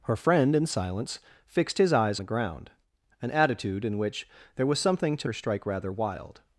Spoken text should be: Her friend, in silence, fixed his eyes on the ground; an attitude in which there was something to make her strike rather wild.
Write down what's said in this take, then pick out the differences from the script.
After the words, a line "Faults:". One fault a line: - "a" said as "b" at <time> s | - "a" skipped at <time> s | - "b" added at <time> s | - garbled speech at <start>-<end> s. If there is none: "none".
Her friend, in silence, fixed his eyes the ground; an attitude in which there was something to her strike rather wild.
Faults:
- "on" skipped at 2.2 s
- "make" skipped at 5.3 s